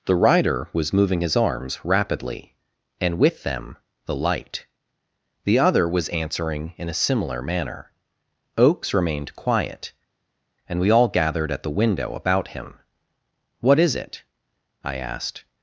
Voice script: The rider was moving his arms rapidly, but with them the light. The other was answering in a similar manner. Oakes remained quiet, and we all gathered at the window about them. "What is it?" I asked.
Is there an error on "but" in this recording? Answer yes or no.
yes